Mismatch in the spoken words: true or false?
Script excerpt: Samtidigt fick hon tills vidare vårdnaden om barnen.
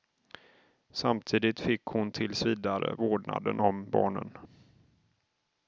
false